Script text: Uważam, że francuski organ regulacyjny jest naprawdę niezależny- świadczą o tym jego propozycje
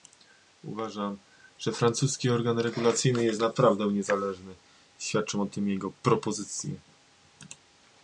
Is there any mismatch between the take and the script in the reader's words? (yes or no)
no